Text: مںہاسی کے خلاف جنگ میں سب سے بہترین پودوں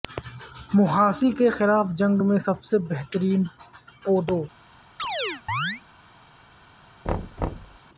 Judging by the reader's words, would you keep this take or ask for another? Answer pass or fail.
pass